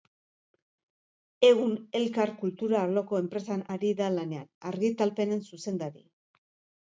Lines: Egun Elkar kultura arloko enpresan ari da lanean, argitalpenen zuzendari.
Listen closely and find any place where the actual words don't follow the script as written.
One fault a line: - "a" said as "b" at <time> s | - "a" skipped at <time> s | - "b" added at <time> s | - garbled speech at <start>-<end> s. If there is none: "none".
none